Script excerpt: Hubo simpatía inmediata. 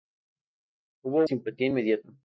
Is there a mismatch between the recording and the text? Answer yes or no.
no